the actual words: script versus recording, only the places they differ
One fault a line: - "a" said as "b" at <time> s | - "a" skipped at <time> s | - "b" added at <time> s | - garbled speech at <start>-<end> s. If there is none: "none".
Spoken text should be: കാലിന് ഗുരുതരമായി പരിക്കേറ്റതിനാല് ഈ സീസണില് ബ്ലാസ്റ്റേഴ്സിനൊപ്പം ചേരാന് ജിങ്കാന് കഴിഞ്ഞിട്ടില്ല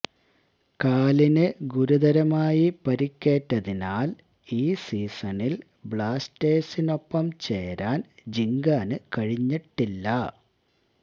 none